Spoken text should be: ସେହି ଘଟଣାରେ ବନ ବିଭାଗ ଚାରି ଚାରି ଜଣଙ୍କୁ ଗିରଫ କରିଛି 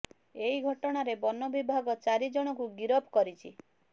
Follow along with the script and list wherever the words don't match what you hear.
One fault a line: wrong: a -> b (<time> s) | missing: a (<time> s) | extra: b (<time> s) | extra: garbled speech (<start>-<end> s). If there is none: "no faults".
wrong: ସେହି -> ଏହି (0.3 s)
missing: ଚାରି (2.3 s)